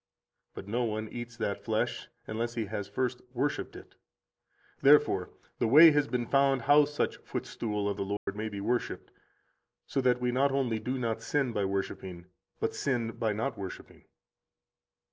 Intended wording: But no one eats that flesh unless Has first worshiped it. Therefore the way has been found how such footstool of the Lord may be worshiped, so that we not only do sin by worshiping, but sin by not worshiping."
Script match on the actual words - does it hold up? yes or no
no